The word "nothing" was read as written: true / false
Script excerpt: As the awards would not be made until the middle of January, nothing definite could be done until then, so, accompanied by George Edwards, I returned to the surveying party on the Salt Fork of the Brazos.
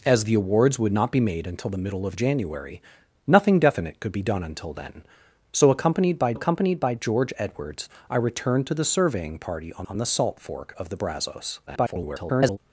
true